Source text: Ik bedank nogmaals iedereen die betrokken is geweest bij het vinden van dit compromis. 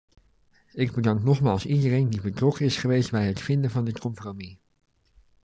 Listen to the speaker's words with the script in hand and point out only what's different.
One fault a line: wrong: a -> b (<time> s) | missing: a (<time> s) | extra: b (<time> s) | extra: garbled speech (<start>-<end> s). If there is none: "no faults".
no faults